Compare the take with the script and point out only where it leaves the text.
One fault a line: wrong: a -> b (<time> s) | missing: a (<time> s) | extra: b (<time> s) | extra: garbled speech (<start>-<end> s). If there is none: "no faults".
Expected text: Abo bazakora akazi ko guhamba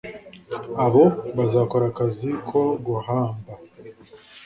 no faults